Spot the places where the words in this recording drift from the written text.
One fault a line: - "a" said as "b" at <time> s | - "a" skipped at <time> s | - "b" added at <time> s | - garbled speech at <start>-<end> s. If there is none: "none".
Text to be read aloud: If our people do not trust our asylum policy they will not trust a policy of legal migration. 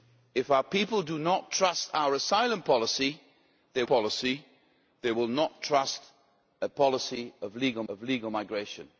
- "policy they" added at 3.8 s
- "of legal" added at 7.9 s